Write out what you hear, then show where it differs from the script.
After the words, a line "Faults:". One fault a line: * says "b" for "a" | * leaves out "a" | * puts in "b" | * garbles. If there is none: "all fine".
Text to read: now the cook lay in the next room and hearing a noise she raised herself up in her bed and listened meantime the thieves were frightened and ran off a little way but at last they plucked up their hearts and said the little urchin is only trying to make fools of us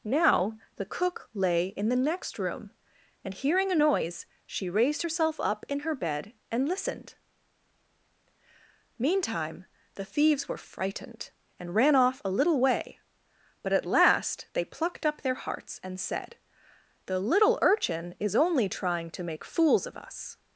now the cook lay in the next room and hearing a noise she raised herself up in her bed and listened meantime the thieves were frightened and ran off a little way but at last they plucked up their hearts and said the little urchin is only trying to make fools of us
Faults:
all fine